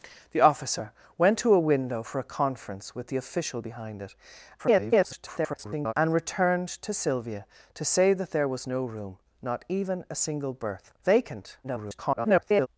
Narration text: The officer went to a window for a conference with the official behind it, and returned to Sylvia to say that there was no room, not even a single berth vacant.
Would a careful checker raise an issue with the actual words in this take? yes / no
yes